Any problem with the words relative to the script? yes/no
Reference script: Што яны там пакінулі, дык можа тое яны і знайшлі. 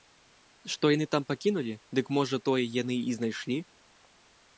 no